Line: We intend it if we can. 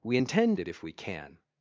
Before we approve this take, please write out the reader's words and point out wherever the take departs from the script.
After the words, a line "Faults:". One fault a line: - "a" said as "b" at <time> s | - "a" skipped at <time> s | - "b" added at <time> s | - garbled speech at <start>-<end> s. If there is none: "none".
We intend it if we can.
Faults:
none